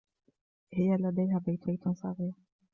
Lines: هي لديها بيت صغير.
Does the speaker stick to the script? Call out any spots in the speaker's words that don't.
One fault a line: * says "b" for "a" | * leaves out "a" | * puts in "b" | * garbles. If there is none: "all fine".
* puts in "بيت"